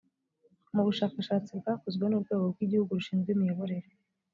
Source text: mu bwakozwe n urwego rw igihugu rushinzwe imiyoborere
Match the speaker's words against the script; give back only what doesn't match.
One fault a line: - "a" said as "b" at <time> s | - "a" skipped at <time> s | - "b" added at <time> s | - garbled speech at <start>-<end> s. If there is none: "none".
- "bushakashatsi" added at 0.9 s